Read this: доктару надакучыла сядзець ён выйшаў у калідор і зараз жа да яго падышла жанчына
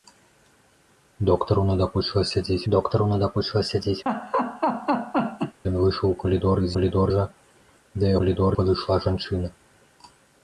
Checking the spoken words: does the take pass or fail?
fail